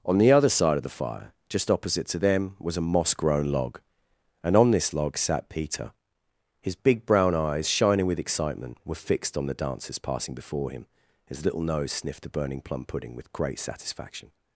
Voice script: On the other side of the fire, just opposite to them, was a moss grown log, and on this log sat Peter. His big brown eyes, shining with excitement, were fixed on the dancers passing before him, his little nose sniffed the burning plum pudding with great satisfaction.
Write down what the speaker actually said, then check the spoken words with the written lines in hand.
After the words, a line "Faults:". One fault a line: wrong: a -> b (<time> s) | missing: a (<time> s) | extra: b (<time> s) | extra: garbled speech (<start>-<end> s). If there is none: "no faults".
On the other side of the fire, just opposite to them, was a moss grown log, and on this log sat Peter. His big brown eyes, shining with excitement, were fixed on the dancers passing before him, his little nose sniffed the burning plum pudding with great satisfaction.
Faults:
no faults